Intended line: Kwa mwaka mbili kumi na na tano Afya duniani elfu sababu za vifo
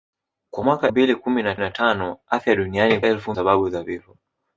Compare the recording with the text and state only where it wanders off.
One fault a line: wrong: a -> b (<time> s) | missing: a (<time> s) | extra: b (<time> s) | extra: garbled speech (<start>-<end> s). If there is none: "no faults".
no faults